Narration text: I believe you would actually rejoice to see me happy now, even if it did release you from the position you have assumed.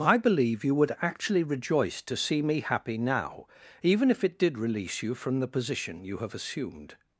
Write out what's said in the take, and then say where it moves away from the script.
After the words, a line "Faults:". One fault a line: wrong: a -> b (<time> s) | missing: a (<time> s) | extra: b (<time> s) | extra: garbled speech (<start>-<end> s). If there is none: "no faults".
I believe you would actually rejoice to see me happy now, even if it did release you from the position you have assumed.
Faults:
no faults